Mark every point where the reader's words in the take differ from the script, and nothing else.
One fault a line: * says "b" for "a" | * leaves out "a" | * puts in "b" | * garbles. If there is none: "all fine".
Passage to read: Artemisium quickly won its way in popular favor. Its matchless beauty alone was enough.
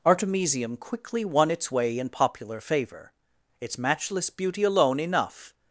* leaves out "was"